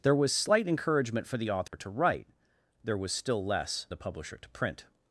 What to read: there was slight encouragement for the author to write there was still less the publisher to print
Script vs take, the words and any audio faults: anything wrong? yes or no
yes